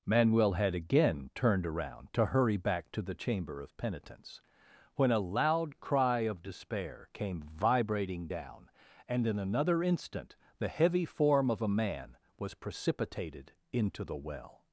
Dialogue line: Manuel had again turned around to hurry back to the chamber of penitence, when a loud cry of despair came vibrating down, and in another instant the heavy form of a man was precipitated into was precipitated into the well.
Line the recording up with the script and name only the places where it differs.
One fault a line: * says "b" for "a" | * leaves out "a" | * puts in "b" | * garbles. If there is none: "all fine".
* leaves out "was precipitated into"